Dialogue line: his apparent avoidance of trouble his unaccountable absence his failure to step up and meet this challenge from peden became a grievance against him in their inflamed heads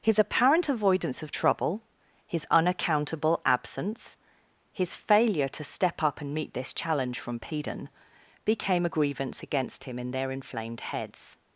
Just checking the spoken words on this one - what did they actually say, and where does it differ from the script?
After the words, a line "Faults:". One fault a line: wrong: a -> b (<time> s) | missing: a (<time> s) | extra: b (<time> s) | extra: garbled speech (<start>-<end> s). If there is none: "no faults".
his apparent avoidance of trouble his unaccountable absence his failure to step up and meet this challenge from peden became a grievance against him in their inflamed heads
Faults:
no faults